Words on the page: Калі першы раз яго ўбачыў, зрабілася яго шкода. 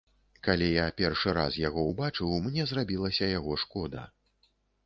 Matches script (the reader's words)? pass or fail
fail